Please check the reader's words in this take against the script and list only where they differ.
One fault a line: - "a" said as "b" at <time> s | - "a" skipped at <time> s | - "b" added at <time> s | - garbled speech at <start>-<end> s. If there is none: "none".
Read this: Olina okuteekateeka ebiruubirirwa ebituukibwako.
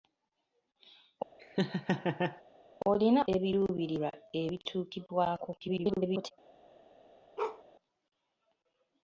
- "okuteekateeka" skipped at 3.2 s
- garbled speech at 5.6-6.3 s